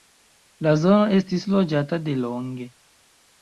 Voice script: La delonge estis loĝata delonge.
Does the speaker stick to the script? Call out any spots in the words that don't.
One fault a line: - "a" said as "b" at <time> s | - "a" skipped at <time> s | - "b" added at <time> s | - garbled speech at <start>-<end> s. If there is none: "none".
- "delonge" said as "zono" at 0.8 s